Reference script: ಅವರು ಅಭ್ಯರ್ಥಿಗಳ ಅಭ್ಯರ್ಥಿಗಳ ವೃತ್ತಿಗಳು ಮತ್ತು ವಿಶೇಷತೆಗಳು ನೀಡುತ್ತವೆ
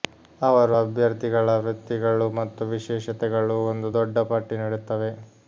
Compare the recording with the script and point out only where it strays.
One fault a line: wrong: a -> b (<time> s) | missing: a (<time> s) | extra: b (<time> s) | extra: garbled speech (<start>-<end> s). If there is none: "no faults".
missing: ಅಭ್ಯರ್ಥಿಗಳ (1.6 s)
extra: ಒಂದು ದೊಡ್ಡ ಪಟ್ಟಿ (3.7 s)